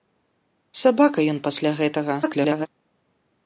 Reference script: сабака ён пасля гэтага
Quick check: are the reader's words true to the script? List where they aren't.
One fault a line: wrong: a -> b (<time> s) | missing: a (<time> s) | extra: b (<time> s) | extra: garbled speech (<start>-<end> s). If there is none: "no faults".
extra: garbled speech (2.2-2.7 s)